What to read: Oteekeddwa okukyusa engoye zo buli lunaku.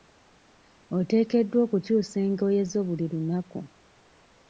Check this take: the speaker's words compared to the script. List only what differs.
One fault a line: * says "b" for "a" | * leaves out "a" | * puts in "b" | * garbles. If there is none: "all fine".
all fine